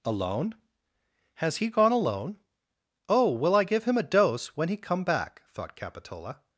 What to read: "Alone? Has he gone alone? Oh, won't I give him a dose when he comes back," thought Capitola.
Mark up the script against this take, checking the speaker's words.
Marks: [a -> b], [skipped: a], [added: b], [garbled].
"Alone? Has he gone alone? Oh, [won't -> will] I give him a dose when he [comes -> come] back," thought Capitola.